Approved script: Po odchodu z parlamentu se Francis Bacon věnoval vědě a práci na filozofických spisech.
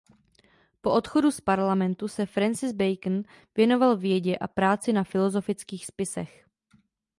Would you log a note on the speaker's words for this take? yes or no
no